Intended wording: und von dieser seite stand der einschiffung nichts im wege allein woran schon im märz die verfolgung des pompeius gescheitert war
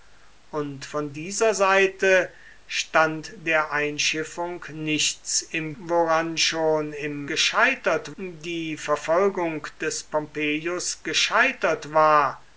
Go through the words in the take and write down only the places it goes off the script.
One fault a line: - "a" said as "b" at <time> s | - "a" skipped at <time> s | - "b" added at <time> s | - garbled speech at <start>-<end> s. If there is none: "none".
- "wege allein" skipped at 5.8 s
- "märz" said as "gescheitert" at 7.3 s